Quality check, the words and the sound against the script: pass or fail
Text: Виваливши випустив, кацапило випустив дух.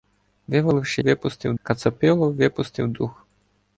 pass